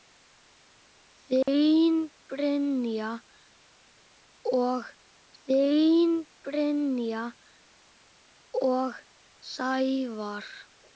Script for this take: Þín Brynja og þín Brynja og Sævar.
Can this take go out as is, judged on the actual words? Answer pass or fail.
pass